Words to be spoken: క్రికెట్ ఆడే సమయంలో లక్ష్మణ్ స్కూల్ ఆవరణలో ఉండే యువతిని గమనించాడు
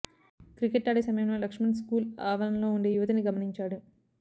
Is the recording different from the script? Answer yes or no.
no